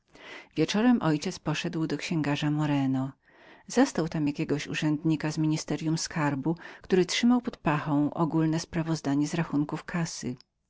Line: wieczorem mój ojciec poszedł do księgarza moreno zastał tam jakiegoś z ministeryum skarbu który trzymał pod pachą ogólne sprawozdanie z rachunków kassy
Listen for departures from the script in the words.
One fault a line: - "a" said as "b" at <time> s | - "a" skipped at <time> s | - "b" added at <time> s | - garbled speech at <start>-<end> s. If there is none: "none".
- "urzędnika" added at 4.7 s